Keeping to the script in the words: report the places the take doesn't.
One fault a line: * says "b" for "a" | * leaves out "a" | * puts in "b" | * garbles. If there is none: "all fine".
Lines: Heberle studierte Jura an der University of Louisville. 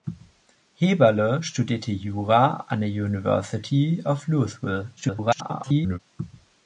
* garbles